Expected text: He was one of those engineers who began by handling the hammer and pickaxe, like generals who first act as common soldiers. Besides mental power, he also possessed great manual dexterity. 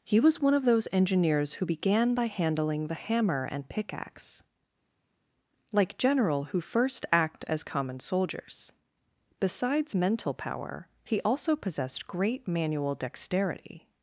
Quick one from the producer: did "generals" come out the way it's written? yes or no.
no